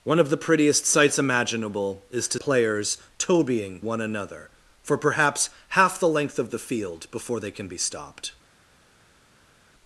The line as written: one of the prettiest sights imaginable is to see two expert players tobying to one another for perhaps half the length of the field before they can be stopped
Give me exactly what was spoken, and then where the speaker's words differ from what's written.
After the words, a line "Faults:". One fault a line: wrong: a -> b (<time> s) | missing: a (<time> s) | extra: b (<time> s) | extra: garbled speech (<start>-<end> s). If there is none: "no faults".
one of the prettiest sights imaginable is to players tobying one another for perhaps half the length of the field before they can be stopped
Faults:
missing: see two expert (2.4 s)
missing: to (3.8 s)